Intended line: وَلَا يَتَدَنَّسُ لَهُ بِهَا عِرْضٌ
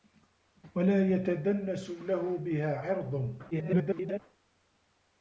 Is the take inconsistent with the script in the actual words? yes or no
yes